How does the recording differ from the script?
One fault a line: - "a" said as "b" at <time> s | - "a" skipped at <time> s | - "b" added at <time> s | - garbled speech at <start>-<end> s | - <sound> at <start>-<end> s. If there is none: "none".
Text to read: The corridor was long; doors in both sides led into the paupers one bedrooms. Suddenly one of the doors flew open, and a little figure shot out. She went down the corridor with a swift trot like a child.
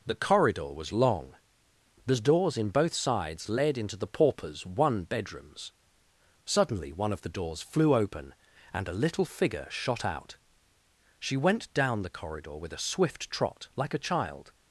- "the" added at 2.1 s